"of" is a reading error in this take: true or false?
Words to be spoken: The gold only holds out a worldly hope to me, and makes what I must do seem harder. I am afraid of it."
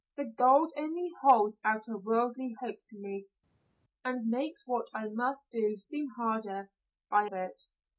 true